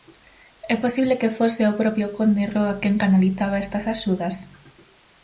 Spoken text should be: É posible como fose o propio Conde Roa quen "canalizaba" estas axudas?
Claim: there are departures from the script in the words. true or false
true